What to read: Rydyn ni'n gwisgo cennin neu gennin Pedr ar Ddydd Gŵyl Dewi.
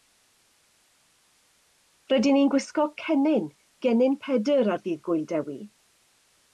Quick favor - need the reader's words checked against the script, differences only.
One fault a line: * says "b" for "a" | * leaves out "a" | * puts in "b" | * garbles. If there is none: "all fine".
* leaves out "neu"